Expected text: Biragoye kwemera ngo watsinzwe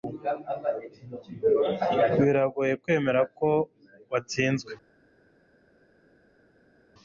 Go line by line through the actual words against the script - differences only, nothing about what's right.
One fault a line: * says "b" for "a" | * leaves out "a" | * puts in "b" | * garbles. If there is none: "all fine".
* says "ko" for "ngo"